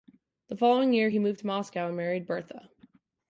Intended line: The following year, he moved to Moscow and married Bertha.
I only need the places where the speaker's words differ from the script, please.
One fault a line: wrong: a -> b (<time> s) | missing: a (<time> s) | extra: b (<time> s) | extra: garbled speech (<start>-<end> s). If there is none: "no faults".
no faults